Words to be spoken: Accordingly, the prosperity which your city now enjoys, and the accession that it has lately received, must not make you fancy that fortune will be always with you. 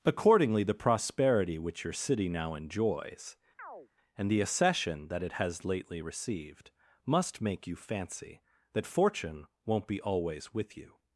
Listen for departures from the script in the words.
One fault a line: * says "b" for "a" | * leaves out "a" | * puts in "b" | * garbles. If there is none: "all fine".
* leaves out "not"
* says "won't" for "will"